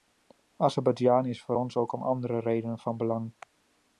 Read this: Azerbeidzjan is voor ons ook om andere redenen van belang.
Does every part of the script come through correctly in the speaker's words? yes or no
yes